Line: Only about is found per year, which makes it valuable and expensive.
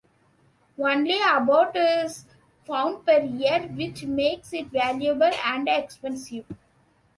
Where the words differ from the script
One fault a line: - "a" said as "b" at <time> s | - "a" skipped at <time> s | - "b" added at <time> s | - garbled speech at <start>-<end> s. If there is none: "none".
none